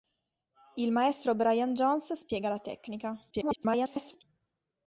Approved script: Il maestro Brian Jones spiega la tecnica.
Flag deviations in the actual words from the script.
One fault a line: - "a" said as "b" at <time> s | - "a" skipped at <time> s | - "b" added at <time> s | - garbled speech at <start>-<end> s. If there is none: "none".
- garbled speech at 3.3-4.2 s